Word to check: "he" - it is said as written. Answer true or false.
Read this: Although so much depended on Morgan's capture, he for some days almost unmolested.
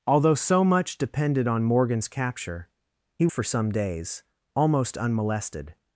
true